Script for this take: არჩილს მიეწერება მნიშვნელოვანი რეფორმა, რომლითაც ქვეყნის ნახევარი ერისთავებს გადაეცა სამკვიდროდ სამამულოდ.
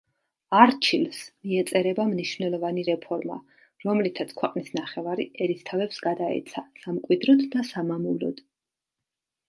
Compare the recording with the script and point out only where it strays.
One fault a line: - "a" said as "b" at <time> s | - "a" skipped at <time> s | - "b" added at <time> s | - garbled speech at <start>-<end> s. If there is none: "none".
- "და" added at 7.6 s